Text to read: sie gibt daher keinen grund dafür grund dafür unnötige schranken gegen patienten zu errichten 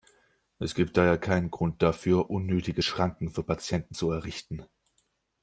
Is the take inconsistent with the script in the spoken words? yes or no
yes